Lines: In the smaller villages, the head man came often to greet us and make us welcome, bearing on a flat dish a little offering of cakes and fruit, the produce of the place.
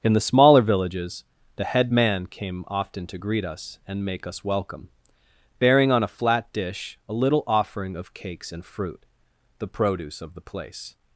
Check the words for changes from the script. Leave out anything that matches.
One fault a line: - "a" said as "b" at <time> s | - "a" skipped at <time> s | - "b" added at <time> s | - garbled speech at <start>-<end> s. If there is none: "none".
none